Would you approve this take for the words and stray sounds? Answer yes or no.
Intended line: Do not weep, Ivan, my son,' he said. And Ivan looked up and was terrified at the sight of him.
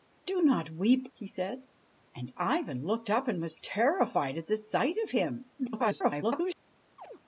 no